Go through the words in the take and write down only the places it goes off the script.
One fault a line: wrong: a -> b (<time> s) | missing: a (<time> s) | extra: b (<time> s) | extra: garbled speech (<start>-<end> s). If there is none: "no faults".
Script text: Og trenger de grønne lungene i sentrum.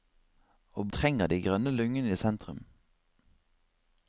no faults